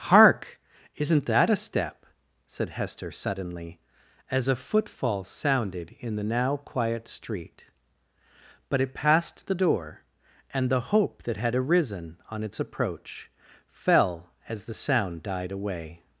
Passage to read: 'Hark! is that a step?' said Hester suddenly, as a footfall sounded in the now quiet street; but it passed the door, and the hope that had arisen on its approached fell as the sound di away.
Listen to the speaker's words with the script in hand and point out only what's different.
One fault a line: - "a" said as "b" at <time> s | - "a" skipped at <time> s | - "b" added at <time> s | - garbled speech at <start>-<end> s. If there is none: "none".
- "is" said as "isn't" at 0.9 s
- "approached" said as "approach" at 12.6 s
- "di" said as "died" at 15.2 s